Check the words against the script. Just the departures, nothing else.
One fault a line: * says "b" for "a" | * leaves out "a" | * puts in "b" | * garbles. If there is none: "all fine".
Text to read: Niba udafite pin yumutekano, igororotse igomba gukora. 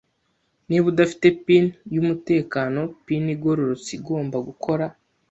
* puts in "pin"